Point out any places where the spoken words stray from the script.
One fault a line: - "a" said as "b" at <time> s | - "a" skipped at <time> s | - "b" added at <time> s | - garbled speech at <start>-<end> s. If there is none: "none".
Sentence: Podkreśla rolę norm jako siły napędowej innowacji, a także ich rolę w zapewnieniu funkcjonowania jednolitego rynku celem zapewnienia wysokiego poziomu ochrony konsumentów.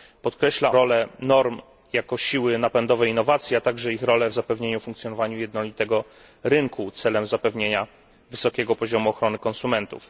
none